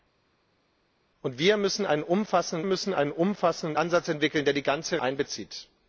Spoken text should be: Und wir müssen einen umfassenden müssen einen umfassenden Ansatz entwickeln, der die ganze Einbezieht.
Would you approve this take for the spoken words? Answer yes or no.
yes